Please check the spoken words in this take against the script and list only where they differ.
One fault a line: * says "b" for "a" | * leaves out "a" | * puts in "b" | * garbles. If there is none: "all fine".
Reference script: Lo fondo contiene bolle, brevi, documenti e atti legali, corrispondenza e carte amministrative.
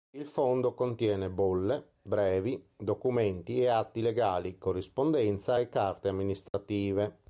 * says "Il" for "Lo"